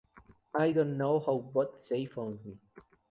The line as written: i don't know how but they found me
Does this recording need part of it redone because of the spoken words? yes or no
no